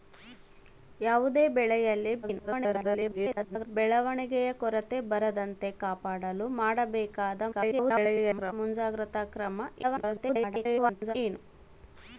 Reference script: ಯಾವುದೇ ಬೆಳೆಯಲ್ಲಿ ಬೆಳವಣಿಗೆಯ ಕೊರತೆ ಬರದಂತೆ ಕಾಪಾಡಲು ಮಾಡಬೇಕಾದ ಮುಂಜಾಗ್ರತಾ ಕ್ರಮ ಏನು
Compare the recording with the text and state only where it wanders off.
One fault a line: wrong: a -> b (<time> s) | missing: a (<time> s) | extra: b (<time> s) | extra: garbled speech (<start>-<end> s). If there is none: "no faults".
extra: garbled speech (2.2-3.7 s)
extra: garbled speech (7.5-8.5 s)
extra: garbled speech (9.8-11.2 s)